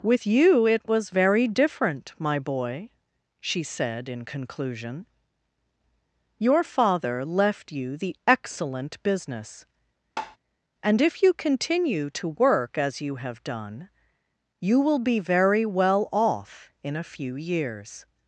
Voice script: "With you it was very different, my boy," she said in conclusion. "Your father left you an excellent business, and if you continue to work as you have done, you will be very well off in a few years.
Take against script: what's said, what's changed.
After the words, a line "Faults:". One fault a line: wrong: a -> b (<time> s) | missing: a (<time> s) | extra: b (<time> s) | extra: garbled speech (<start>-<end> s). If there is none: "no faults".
"With you it was very different, my boy," she said in conclusion. "Your father left you the excellent business, and if you continue to work as you have done, you will be very well off in a few years.
Faults:
wrong: an -> the (8.0 s)